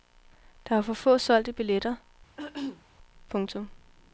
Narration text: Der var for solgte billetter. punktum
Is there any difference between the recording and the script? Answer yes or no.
yes